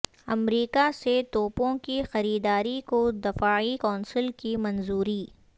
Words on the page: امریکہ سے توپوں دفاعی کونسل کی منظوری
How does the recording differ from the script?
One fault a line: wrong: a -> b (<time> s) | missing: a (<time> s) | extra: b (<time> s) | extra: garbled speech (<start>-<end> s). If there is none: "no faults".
extra: کی خریداری کو (1.8 s)